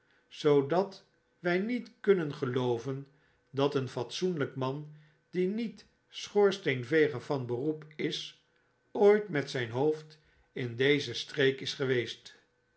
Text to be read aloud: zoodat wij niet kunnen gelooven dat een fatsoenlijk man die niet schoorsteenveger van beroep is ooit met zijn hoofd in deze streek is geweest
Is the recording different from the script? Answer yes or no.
no